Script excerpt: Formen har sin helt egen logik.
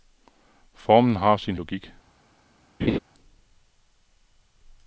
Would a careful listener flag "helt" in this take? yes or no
yes